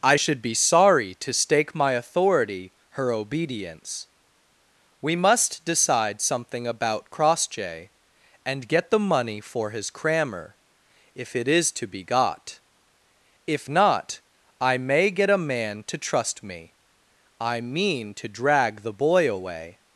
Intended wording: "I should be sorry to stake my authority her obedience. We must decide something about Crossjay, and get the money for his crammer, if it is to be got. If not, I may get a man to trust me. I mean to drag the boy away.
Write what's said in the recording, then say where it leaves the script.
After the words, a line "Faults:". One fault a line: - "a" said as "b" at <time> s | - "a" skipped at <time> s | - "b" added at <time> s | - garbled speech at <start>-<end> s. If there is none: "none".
"I should be sorry to stake my authority her obedience. We must decide something about Crossjay, and get the money for his crammer, if it is to be got. If not, I may get a man to trust me. I mean to drag the boy away.
Faults:
none